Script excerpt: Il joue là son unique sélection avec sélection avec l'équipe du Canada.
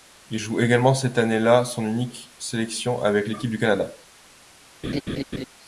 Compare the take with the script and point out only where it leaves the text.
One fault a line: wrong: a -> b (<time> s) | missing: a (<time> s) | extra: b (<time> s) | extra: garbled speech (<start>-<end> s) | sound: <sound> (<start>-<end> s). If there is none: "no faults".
extra: également cette année (0.6 s)
missing: sélection avec (3.3 s)
sound: laugh (4.8-5.5 s)